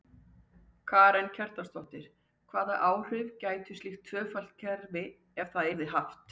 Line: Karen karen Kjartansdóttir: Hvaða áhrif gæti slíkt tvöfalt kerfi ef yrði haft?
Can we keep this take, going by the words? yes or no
no